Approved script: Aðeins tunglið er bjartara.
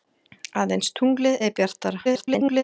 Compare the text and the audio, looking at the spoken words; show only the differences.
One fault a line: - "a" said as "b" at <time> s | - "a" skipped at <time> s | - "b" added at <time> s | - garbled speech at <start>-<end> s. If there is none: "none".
- garbled speech at 2.0-2.6 s